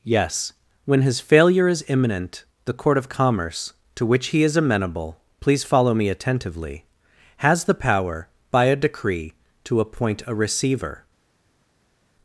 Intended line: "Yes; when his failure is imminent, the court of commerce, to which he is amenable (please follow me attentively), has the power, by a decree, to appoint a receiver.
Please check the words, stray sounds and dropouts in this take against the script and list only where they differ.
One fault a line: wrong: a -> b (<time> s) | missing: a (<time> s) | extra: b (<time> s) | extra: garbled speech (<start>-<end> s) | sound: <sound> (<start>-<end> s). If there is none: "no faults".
no faults